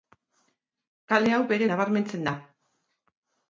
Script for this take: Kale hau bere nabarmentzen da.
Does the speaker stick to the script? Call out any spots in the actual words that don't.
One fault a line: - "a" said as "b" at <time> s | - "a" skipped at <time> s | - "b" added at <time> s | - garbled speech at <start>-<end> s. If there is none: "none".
none